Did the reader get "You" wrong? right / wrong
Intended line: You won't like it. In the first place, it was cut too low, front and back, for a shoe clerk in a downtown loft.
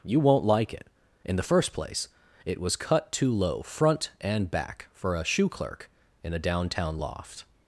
right